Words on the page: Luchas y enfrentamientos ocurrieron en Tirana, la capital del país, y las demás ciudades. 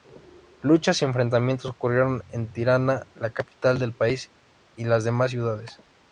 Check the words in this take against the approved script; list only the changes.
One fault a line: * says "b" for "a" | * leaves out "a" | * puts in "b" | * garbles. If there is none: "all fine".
all fine